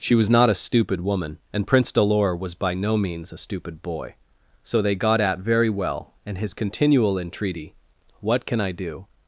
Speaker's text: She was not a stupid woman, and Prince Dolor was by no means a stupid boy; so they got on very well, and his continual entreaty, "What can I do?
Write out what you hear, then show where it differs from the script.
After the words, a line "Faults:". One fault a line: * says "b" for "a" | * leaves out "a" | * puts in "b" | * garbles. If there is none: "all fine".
She was not a stupid woman, and Prince Dolor was by no means a stupid boy; so they got at very well, and his continual entreaty, "What can I do?
Faults:
* says "at" for "on"